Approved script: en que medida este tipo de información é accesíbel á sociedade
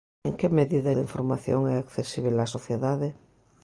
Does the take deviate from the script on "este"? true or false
true